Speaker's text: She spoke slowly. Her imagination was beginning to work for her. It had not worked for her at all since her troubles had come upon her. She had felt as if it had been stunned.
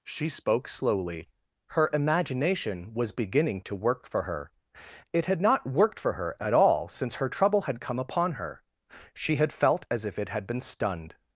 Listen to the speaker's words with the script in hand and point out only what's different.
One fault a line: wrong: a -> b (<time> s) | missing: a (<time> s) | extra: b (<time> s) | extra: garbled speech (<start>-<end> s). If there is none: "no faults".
wrong: troubles -> trouble (7.3 s)